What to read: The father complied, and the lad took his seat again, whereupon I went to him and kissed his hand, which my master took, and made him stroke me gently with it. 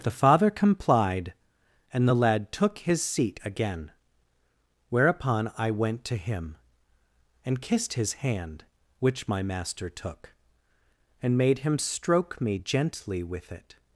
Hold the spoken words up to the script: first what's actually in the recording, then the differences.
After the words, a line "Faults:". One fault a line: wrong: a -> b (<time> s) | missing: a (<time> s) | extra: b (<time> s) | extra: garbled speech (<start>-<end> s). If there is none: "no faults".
The father complied, and the lad took his seat again, whereupon I went to him and kissed his hand, which my master took, and made him stroke me gently with it.
Faults:
no faults